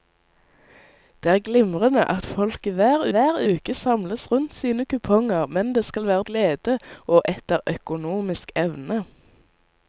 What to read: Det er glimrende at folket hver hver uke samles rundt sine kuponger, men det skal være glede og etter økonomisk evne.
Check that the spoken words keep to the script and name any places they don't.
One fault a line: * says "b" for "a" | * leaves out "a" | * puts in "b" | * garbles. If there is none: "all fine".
all fine